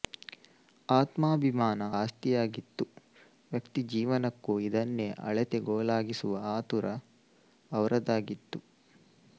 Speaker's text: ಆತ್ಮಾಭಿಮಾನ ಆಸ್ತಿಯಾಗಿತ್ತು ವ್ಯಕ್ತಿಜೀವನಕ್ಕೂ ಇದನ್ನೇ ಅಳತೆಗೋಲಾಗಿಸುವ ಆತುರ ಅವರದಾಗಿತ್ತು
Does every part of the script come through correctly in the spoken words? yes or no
yes